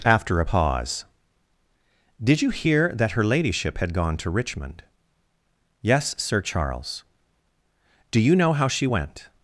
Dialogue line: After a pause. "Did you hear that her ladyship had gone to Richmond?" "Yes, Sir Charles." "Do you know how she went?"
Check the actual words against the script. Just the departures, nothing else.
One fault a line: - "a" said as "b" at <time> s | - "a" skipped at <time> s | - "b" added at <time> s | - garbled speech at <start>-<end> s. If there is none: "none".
none